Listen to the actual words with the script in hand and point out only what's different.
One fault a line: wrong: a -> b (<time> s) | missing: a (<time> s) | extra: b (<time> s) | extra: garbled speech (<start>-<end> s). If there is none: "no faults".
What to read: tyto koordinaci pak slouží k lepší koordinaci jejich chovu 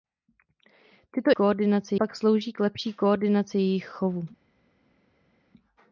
no faults